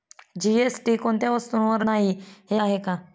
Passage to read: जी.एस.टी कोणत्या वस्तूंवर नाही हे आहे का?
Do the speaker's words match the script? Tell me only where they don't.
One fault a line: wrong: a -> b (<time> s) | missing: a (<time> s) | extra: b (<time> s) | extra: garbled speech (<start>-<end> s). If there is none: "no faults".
no faults